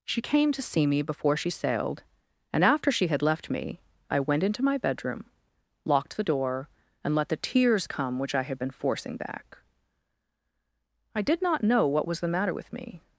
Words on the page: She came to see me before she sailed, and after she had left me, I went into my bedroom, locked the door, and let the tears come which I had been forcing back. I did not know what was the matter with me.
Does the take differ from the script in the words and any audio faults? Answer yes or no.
no